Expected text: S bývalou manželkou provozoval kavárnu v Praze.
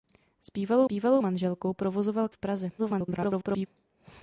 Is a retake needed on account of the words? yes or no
yes